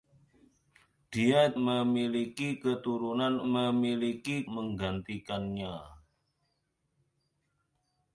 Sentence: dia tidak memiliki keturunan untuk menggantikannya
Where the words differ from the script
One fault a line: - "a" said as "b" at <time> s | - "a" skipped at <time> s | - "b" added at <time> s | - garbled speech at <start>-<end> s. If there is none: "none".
- "tidak" skipped at 1.5 s
- "untuk" said as "memiliki" at 3.5 s